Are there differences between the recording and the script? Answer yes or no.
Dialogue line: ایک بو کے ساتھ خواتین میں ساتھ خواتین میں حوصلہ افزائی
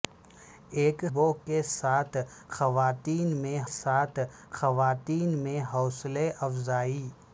no